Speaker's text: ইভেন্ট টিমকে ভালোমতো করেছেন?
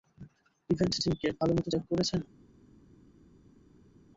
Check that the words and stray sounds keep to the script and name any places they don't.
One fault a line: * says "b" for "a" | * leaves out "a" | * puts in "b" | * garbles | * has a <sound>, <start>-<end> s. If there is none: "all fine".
* puts in "চেক"